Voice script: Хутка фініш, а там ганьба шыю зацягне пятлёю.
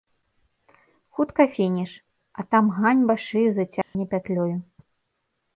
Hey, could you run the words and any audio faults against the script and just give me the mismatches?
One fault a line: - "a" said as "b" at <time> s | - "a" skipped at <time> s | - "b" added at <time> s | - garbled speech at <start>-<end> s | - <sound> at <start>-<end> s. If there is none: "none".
- dropout at 3.8-3.9 s